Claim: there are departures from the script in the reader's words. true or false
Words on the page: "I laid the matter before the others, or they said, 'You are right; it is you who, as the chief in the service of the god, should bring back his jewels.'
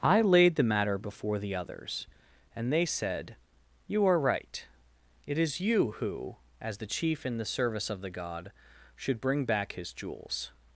true